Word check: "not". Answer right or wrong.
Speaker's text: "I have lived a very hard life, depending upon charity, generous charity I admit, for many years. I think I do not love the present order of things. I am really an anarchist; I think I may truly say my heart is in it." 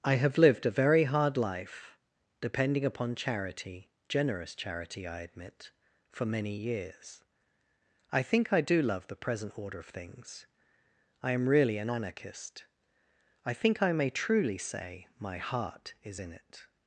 wrong